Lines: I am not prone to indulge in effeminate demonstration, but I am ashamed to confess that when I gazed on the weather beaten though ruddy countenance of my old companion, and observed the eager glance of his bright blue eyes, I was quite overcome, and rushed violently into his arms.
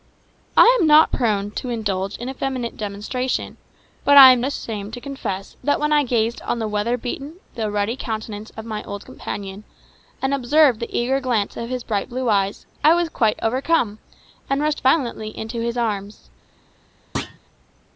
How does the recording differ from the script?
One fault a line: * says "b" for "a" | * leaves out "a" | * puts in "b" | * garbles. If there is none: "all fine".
all fine